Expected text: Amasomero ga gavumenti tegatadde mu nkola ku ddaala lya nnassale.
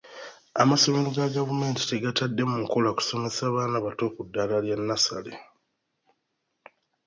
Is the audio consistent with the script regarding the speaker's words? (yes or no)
no